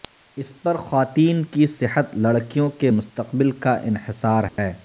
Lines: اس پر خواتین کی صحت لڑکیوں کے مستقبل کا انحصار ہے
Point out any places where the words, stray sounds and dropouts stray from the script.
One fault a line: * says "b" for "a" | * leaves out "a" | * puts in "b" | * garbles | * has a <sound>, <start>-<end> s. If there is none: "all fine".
* has a dropout, 4.5-4.6 s